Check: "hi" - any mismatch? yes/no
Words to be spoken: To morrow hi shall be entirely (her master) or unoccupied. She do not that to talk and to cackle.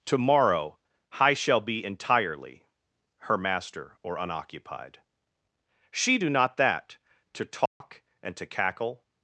yes